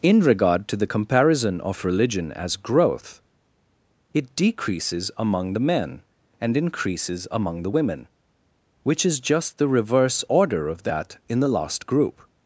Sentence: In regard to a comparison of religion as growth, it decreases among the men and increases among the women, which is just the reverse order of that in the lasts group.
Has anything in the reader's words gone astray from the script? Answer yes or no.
yes